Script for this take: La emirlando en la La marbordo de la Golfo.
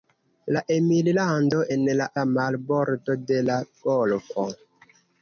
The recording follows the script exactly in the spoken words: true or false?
true